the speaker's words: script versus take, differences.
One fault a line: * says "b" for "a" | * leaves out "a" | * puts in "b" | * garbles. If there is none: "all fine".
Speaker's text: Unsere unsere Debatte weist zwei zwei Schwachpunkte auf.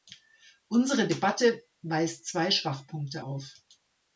* leaves out "unsere"
* leaves out "zwei"